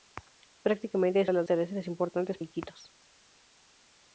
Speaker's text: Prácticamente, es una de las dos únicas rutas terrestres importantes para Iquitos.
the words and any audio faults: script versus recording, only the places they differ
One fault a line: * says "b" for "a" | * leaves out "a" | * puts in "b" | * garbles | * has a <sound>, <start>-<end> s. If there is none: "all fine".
* leaves out "una"
* leaves out "dos únicas rutas"
* leaves out "para"